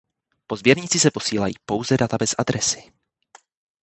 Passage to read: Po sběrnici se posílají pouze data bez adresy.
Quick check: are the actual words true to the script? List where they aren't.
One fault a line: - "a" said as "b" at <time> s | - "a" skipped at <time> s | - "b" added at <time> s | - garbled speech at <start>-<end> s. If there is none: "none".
none